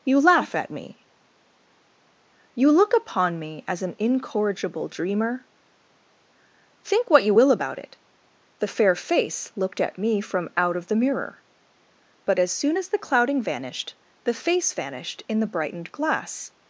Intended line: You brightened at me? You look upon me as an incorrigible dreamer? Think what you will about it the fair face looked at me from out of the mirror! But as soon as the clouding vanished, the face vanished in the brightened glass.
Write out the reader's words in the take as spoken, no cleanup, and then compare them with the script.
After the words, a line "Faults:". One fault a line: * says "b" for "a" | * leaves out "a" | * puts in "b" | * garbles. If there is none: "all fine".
You laugh at me? You look upon me as an incorrigible dreamer? Think what you will about it the fair face looked at me from out of the mirror! But as soon as the clouding vanished, the face vanished in the brightened glass.
Faults:
* says "laugh" for "brightened"